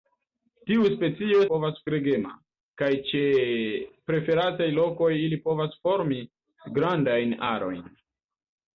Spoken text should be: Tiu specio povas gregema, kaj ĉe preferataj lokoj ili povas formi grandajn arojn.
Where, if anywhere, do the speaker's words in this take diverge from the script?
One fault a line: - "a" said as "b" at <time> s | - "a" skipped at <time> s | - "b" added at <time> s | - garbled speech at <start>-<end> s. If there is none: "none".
none